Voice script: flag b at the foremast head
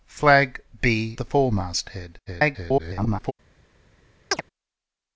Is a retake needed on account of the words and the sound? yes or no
yes